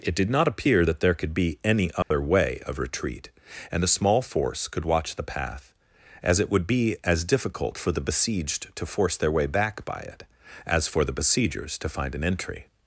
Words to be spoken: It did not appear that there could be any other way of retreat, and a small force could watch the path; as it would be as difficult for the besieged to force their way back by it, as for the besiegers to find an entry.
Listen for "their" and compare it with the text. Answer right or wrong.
right